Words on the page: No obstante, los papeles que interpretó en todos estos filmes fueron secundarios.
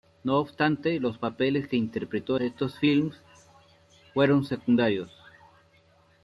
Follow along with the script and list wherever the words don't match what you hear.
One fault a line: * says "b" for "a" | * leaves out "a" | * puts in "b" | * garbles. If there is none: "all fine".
* leaves out "en todos"